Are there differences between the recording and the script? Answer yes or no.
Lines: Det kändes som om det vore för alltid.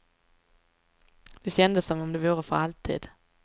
no